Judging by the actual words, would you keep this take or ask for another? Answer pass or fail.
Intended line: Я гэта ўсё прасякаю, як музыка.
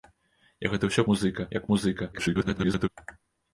fail